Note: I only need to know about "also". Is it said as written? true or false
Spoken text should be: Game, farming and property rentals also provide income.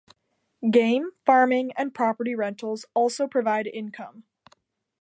true